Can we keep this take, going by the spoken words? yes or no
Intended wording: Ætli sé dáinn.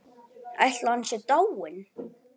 no